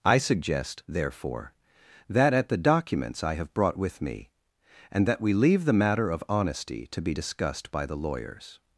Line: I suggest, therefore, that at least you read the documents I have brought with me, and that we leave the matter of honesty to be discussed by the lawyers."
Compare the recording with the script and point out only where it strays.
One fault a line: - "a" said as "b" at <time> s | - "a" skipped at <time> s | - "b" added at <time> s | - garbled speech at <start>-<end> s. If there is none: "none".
- "least you read" skipped at 2.5 s